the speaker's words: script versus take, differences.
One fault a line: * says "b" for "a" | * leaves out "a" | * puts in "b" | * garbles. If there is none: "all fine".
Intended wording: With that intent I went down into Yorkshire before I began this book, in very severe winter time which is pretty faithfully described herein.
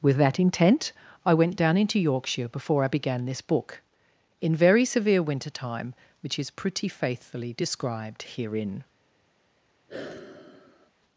all fine